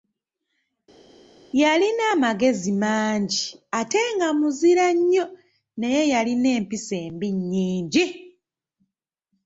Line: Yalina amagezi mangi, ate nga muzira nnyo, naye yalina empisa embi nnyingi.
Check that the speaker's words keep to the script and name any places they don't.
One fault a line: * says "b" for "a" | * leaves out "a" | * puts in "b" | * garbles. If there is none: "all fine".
all fine